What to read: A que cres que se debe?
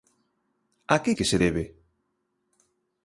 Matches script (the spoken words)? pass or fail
fail